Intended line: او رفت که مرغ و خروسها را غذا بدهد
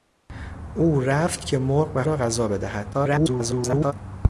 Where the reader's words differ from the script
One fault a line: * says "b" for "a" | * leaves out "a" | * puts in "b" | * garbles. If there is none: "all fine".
* leaves out "خروسها"
* garbles